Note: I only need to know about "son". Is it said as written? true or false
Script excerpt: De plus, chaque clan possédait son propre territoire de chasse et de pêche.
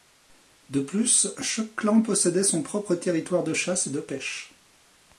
true